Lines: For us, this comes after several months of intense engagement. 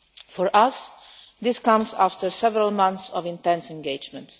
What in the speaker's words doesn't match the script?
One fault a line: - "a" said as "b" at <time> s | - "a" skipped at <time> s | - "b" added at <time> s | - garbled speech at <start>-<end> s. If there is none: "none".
none